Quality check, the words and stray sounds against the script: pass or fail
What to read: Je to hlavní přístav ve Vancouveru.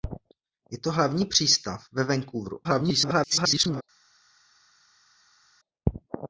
fail